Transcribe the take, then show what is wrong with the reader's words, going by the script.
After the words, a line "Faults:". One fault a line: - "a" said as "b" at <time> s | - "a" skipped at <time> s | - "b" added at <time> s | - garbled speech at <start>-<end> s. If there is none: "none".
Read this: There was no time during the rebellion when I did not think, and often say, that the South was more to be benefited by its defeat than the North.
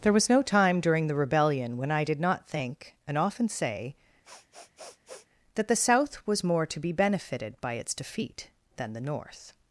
There was no time during the rebellion when I did not think, and often say, that the South was more to be benefited by its defeat than the North.
Faults:
none